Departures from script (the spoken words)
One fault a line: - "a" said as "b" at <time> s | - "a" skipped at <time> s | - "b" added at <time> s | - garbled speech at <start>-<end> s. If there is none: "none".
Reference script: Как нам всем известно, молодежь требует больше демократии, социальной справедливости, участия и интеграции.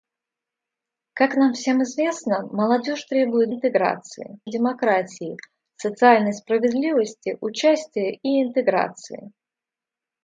- "больше" said as "интеграции" at 3.5 s